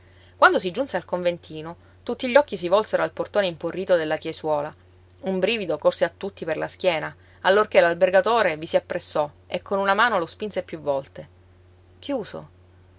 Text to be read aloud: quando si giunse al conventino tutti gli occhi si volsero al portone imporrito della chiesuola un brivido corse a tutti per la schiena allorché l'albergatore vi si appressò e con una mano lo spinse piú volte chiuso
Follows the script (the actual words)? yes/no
yes